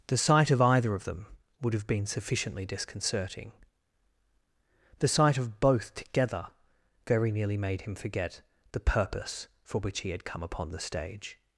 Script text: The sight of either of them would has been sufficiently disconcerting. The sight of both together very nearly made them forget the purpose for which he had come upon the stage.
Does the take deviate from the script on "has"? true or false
true